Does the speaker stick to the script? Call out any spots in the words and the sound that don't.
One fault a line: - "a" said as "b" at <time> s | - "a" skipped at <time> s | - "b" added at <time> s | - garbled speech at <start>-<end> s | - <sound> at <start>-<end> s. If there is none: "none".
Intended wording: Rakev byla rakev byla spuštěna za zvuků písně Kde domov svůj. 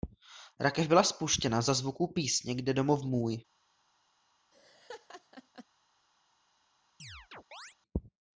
- "rakev byla" skipped at 1.0 s
- "svůj" said as "můj" at 3.0 s
- laugh at 4.5-5.7 s
- chirp at 7.0-7.8 s